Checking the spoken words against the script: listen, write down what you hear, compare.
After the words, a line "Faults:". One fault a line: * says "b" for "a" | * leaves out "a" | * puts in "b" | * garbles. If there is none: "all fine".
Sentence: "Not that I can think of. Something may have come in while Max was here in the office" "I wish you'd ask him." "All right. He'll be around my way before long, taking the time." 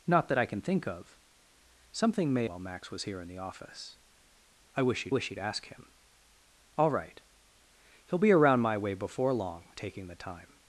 "Not that I can think of. Something may while Max was here in the office" "I wish you'd wish you'd ask him." "All right. He'll be around my way before long, taking the time."
Faults:
* leaves out "have come in"
* puts in "wish you'd"